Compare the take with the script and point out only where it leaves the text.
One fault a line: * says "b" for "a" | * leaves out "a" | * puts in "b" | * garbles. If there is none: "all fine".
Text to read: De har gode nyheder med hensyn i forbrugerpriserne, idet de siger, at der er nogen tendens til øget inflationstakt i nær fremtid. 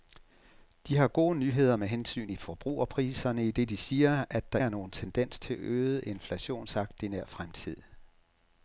all fine